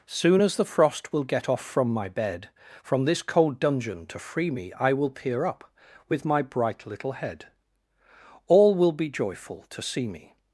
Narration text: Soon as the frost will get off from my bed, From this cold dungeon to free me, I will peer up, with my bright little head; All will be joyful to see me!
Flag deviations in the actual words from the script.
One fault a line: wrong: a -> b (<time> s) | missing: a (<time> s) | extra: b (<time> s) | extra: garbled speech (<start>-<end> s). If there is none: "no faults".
no faults